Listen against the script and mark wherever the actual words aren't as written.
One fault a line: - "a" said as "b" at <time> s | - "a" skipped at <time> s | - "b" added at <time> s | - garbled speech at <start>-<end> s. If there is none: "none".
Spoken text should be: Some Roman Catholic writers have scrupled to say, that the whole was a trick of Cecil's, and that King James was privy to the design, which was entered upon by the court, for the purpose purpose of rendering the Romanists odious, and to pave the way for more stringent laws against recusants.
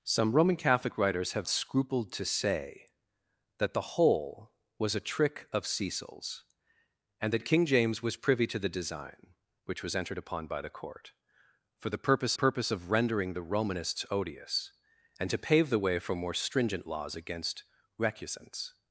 none